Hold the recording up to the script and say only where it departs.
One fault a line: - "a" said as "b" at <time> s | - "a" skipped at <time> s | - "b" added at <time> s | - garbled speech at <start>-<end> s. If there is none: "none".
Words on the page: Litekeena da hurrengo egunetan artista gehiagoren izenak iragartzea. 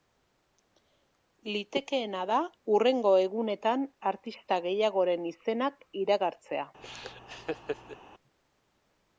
none